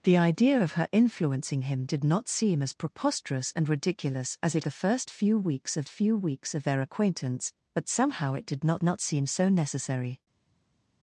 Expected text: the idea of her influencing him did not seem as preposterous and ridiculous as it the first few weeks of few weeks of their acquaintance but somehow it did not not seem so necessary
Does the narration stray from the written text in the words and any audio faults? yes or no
no